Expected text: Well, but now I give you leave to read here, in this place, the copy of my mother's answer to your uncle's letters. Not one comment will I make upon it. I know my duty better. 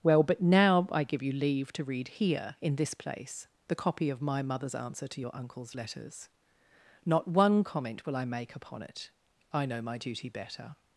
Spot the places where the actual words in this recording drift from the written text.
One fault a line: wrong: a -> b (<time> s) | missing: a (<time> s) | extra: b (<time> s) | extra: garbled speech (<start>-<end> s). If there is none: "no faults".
no faults